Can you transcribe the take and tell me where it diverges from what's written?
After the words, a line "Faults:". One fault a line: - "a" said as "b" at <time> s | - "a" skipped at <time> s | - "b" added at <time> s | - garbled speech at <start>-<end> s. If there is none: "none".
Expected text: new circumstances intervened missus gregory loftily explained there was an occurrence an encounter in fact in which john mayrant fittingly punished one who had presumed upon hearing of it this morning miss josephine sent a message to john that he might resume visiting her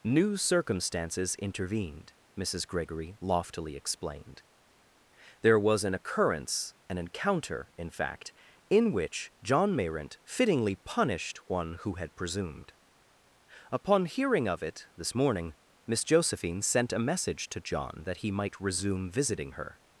new circumstances intervened missus gregory loftily explained there was an occurrence an encounter in fact in which john mayrant fittingly punished one who had presumed upon hearing of it this morning miss josephine sent a message to john that he might resume visiting her
Faults:
none